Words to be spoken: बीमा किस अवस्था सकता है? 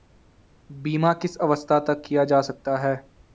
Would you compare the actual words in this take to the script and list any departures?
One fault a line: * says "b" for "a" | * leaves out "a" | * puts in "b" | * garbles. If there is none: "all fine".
* puts in "तक किया जा"